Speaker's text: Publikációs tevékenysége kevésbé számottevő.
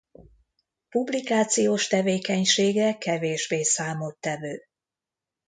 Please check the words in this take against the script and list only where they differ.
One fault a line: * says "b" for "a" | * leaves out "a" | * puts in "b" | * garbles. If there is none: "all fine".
all fine